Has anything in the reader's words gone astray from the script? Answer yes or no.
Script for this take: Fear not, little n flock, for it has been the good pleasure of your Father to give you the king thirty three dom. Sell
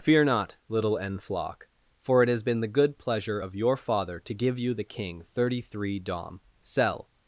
no